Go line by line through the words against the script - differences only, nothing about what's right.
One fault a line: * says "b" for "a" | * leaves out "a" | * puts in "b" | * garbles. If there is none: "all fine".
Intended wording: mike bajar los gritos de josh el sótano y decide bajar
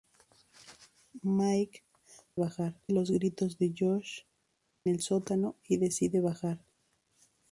all fine